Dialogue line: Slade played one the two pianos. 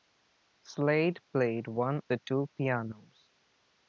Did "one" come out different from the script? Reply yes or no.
no